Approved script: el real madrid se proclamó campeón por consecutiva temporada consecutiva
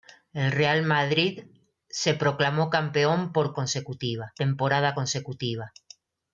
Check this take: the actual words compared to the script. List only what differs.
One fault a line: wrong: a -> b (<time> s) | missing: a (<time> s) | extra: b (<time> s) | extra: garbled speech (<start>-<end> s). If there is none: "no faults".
no faults